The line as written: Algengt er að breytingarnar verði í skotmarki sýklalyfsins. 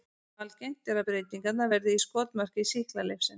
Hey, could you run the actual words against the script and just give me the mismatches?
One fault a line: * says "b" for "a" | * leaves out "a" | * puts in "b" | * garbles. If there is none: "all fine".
all fine